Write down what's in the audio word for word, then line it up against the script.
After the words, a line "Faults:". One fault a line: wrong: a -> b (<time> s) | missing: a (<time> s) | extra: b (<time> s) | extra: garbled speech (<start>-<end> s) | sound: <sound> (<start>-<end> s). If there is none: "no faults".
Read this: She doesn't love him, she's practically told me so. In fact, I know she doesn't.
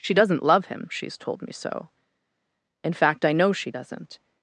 She doesn't love him, she's told me so. In fact, I know she doesn't.
Faults:
missing: practically (1.1 s)